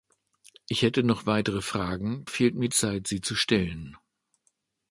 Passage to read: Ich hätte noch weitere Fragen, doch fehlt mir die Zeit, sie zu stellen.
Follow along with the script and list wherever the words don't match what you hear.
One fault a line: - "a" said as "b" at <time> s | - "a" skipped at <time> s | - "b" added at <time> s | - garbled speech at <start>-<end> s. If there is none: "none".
- "doch" skipped at 2.2 s
- "die" skipped at 2.7 s